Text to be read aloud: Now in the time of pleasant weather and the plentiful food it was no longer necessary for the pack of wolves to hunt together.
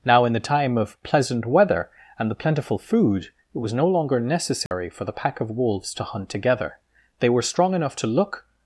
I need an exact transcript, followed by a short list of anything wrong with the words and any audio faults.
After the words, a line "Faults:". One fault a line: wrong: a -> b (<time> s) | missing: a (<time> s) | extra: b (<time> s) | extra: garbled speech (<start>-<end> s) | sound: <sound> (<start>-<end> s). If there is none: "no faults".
Now in the time of pleasant weather and the plentiful food it was no longer necessary for the pack of wolves to hunt together. They were strong enough to look
Faults:
sound: dropout (4.7-4.7 s)
extra: They were strong enough to look (7.2 s)